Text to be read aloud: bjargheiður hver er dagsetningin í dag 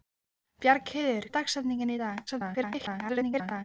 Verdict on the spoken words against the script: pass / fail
fail